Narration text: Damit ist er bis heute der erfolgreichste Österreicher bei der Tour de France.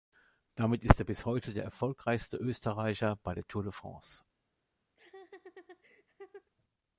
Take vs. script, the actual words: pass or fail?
pass